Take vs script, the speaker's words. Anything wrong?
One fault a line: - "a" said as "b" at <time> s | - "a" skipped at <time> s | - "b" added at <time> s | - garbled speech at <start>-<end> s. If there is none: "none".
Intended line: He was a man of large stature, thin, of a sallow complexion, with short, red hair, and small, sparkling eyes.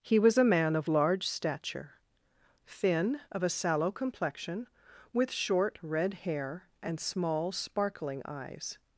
none